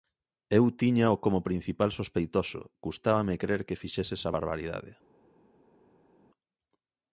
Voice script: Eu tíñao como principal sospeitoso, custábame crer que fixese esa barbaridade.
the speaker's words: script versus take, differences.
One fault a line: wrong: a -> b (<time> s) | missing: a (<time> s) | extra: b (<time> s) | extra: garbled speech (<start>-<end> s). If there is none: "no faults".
no faults